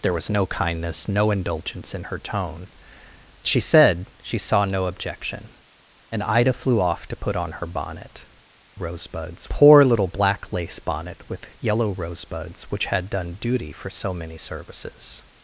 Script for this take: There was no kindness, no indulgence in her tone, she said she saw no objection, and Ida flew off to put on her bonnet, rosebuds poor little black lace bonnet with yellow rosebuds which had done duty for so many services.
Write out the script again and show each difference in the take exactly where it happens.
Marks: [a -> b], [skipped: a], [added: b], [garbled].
There was no kindness, no indulgence in her tone, she said she saw no objection, and Ida flew off to put on her bonnet, rosebuds poor little black lace bonnet with yellow rosebuds which had done duty for so many services.